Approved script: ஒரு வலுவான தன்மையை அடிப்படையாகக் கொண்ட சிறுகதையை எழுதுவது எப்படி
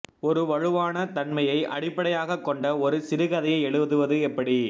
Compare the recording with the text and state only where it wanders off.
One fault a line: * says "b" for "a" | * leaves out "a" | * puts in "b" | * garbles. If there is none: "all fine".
* puts in "ஒரு"